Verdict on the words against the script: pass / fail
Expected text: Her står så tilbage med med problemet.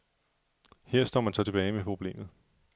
fail